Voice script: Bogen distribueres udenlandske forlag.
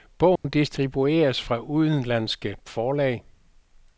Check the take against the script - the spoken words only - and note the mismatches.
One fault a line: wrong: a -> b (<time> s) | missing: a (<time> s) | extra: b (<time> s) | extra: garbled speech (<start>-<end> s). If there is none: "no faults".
extra: fra (1.4 s)